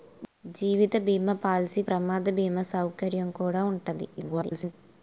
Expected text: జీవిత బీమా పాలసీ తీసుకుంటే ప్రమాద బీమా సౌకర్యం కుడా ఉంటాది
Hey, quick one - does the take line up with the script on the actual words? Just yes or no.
no